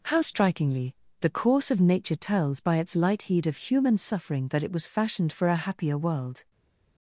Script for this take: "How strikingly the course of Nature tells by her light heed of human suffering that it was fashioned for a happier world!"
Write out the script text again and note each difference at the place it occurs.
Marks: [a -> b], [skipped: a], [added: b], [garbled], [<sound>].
"How strikingly the course of Nature tells by [her -> its] light heed of human suffering that it was fashioned for a happier world!"